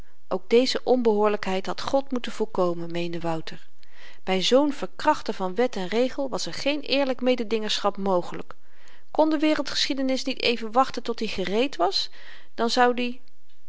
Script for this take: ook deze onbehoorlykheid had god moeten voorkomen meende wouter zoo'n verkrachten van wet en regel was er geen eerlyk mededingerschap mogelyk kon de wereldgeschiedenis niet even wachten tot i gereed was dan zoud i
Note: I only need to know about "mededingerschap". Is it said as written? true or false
true